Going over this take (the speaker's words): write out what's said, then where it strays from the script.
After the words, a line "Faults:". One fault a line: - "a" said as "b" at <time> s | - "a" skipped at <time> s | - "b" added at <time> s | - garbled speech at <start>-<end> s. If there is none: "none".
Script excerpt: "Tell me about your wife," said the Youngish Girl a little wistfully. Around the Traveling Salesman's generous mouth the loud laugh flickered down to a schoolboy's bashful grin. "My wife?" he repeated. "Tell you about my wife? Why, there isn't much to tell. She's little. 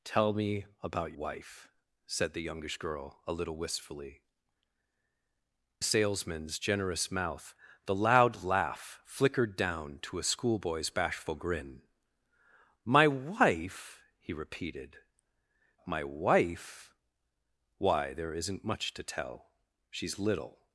"Tell me about wife," said the Youngish Girl a little wistfully. Salesman's generous mouth the loud laugh flickered down to a schoolboy's bashful grin. "My wife?" he repeated. "My wife? Why, there isn't much to tell. She's little.
Faults:
- "your" skipped at 1.1 s
- "Around the Traveling" skipped at 4.2 s
- "Tell you about" skipped at 15.0 s